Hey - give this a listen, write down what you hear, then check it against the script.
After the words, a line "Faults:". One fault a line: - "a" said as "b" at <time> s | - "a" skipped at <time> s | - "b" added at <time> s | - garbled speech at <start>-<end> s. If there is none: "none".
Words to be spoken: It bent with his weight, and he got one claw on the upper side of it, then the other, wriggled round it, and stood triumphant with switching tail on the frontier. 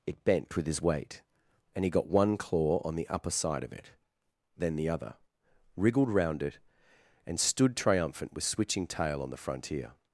It bent with his weight, and he got one claw on the upper side of it, then the other, wriggled round it, and stood triumphant with switching tail on the frontier.
Faults:
none